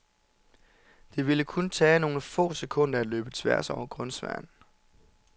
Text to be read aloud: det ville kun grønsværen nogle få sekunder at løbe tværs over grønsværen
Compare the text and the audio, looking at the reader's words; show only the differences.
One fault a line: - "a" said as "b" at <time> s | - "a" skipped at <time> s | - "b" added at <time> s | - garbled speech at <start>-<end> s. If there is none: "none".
- "grønsværen" said as "tage" at 1.7 s